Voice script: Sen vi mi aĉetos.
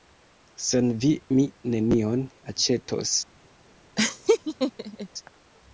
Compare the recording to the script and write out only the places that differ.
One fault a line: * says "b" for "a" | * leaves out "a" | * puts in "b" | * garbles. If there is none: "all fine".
* puts in "nenion"